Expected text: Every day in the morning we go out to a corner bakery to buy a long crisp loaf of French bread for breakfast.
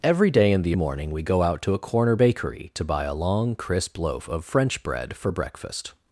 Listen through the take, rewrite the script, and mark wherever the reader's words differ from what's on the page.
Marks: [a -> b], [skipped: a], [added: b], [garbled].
Every day in the morning we go out to a corner bakery to buy a long crisp loaf of French bread for breakfast.